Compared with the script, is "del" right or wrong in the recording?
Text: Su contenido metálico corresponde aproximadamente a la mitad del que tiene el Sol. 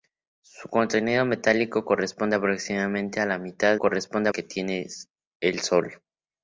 wrong